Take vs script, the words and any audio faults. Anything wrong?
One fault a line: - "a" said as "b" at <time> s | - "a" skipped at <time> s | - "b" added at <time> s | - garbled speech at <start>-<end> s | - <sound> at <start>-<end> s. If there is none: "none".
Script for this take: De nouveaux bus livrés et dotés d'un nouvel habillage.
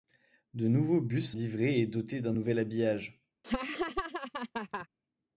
- laugh at 3.4-4.9 s